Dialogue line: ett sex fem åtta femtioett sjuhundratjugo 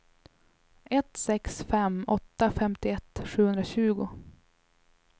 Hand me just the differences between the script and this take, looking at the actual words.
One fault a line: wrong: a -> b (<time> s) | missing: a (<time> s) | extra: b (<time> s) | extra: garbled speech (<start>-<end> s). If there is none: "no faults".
no faults